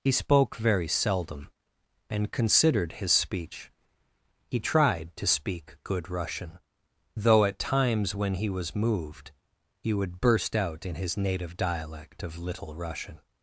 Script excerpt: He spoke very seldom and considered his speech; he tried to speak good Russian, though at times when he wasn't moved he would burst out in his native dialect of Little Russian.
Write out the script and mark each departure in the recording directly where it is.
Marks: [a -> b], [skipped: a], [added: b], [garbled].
He spoke very seldom and considered his speech; he tried to speak good Russian, though at times when he [wasn't -> was] moved he would burst out in his native dialect of Little Russian.